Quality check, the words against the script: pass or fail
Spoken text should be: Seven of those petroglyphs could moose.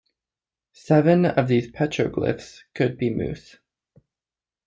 fail